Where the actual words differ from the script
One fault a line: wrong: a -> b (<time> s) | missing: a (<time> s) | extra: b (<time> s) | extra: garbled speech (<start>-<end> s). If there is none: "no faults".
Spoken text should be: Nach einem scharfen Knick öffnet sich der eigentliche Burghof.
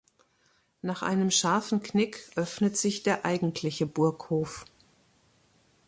no faults